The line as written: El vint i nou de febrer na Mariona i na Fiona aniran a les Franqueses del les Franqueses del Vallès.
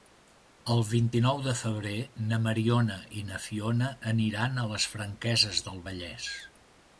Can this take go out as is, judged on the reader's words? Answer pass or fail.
fail